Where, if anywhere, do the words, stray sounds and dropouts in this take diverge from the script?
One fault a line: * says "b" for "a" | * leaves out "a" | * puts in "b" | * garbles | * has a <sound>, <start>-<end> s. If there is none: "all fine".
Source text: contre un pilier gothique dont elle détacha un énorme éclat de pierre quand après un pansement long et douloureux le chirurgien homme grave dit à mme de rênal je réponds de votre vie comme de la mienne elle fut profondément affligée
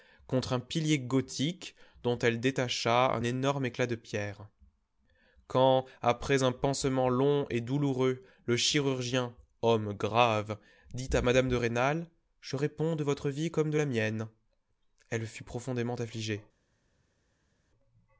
all fine